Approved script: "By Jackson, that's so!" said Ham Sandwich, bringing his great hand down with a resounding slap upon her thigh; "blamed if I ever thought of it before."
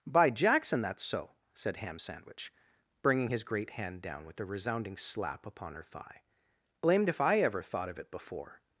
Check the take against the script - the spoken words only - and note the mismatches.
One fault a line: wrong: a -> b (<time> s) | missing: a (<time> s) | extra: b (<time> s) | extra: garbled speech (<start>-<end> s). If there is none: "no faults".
no faults